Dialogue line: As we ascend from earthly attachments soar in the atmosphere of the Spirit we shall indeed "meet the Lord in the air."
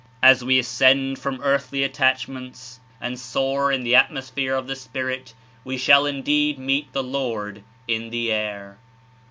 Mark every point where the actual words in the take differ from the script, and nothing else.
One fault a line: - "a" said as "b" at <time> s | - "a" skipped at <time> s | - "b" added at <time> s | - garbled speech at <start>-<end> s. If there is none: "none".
- "and" added at 3.0 s